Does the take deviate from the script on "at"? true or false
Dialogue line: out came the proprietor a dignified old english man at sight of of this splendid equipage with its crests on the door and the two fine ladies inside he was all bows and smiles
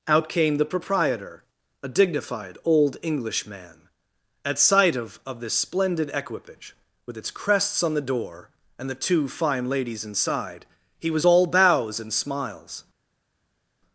false